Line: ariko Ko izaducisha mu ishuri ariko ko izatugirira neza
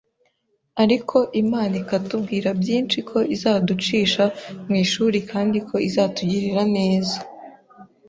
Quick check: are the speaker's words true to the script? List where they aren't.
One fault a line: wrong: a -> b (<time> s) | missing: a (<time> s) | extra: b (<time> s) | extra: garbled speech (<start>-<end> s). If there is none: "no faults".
extra: Imana ikatubwira byinshi (1.4 s)
wrong: ariko -> kandi (5.3 s)